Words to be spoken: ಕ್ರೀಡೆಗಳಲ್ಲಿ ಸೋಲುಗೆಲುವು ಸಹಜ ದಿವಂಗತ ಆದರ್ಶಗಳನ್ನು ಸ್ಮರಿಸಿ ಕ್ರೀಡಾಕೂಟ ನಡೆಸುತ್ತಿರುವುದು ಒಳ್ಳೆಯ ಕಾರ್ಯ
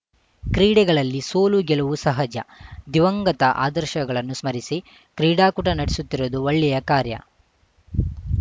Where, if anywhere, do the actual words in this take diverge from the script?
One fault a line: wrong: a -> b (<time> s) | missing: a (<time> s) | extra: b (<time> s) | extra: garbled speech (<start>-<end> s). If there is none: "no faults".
no faults